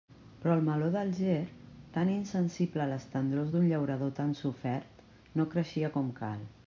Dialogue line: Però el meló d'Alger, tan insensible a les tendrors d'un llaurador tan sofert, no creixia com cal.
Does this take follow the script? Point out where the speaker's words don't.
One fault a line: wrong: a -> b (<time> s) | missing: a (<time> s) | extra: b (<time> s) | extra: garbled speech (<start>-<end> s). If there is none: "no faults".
no faults